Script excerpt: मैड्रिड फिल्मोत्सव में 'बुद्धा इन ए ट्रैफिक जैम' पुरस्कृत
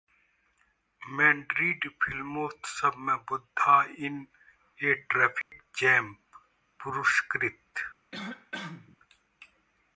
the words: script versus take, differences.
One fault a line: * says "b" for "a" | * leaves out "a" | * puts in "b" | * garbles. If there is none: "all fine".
all fine